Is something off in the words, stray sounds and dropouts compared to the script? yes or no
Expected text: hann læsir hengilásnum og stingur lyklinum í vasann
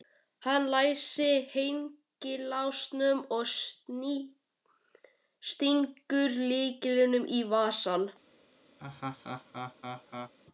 yes